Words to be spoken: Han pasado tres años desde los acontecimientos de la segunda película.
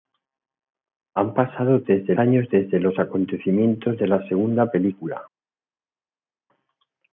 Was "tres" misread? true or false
true